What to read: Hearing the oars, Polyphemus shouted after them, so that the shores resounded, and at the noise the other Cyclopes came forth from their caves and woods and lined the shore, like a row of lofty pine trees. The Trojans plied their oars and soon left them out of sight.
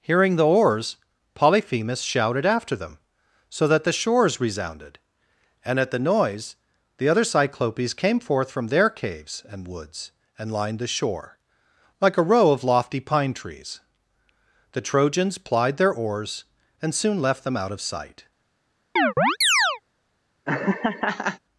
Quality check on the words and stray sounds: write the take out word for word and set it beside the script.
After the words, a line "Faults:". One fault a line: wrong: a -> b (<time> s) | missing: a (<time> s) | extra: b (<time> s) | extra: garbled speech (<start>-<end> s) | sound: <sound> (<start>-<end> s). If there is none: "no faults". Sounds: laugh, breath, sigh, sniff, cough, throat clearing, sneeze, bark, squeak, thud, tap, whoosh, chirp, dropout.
Hearing the oars, Polyphemus shouted after them, so that the shores resounded, and at the noise the other Cyclopes came forth from their caves and woods and lined the shore, like a row of lofty pine trees. The Trojans plied their oars and soon left them out of sight.
Faults:
sound: chirp (19.0-19.8 s)
sound: laugh (20.5-21.4 s)